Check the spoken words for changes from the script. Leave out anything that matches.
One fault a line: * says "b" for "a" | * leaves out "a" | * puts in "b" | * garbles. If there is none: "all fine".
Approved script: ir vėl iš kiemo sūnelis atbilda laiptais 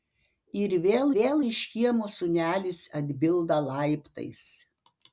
* puts in "vėl"